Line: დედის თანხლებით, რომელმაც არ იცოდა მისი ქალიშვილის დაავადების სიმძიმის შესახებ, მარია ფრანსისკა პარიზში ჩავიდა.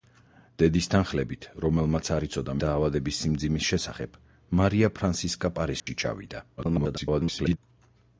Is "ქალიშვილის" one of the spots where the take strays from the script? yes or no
yes